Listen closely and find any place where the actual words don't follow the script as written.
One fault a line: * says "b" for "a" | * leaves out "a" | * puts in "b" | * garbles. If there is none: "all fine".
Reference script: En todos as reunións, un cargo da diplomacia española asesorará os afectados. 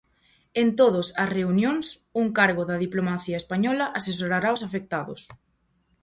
all fine